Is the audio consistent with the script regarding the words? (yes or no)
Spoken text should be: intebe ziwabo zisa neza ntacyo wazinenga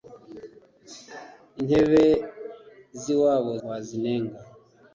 no